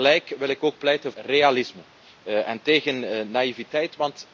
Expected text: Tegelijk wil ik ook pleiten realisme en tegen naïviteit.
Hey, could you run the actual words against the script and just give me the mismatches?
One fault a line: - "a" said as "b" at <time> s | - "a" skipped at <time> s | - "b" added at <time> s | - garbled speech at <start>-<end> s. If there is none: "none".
none